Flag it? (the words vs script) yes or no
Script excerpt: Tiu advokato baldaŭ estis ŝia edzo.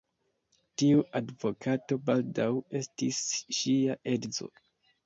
no